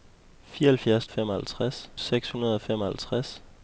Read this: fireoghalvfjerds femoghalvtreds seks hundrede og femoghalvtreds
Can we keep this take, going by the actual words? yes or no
yes